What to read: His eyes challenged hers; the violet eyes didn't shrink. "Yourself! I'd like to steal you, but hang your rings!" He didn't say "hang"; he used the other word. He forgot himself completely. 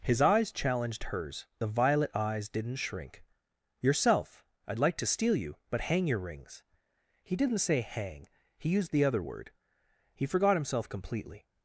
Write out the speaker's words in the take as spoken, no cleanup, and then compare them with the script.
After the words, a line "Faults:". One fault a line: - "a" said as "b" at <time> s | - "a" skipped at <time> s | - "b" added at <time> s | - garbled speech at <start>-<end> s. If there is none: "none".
His eyes challenged hers; the violet eyes didn't shrink. "Yourself! I'd like to steal you, but hang your rings!" He didn't say "hang"; he used the other word. He forgot himself completely.
Faults:
none